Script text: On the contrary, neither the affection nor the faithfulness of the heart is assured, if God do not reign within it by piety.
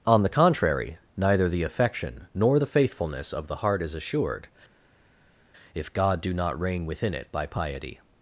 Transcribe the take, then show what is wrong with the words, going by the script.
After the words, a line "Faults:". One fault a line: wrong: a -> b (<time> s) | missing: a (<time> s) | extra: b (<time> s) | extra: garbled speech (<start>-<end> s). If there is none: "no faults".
On the contrary, neither the affection nor the faithfulness of the heart is assured, if God do not reign within it by piety.
Faults:
no faults